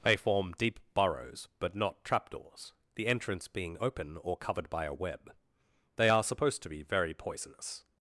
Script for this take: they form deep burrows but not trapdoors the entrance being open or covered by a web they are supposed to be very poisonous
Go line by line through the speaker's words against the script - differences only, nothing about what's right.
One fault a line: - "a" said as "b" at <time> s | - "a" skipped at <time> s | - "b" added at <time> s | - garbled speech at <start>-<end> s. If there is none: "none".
none